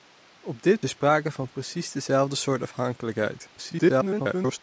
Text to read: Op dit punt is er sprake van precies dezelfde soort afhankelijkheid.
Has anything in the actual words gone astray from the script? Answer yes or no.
yes